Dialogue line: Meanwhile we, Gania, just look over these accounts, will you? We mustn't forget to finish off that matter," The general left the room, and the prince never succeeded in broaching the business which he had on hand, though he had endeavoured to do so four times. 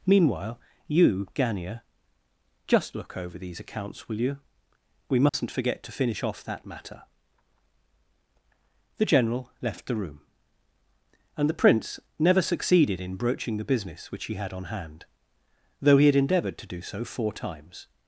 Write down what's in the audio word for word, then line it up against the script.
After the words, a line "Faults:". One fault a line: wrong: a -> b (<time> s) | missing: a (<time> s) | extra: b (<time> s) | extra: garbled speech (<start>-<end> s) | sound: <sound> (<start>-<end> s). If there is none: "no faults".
Meanwhile you, Gania, just look over these accounts, will you? We mustn't forget to finish off that matter," The general left the room, and the prince never succeeded in broaching the business which he had on hand, though he had endeavoured to do so four times.
Faults:
wrong: we -> you (0.9 s)
sound: dropout (5.3-5.3 s)